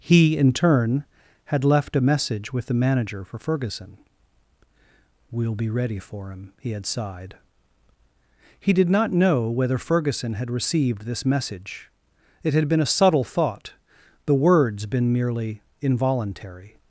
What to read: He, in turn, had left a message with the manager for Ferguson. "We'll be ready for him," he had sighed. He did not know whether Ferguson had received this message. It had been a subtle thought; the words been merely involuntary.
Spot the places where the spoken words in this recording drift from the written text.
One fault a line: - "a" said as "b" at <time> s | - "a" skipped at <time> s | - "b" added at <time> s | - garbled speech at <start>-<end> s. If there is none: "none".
none